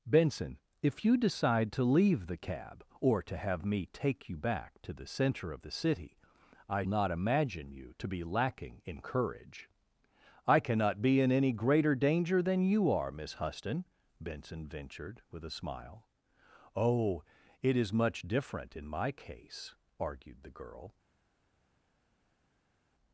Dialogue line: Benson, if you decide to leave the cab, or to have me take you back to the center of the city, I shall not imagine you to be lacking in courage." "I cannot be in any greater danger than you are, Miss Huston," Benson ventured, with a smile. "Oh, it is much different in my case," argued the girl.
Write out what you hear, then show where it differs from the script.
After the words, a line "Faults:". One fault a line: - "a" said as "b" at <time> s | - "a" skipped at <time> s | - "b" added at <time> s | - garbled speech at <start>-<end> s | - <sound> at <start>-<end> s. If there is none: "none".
Benson, if you decide to leave the cab, or to have me take you back to the center of the city, I not imagine you to be lacking in courage." "I cannot be in any greater danger than you are, Miss Huston," Benson ventured, with a smile. "Oh, it is much different in my case," argued the girl.
Faults:
- "shall" skipped at 6.9 s